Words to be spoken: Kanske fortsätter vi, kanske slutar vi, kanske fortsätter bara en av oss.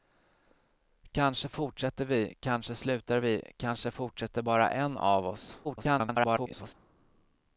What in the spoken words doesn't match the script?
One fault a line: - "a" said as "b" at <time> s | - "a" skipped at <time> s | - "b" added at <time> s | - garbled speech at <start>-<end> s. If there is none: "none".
- garbled speech at 5.6-6.7 s